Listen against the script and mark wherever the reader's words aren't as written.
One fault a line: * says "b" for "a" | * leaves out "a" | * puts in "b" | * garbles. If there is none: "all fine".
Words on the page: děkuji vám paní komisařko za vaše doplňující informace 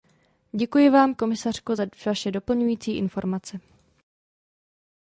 * leaves out "paní"